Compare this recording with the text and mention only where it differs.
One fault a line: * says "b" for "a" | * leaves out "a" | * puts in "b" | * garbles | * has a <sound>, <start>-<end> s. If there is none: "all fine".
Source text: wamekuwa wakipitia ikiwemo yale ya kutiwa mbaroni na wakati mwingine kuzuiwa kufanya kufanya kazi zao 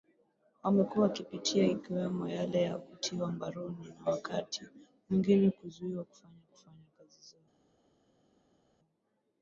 all fine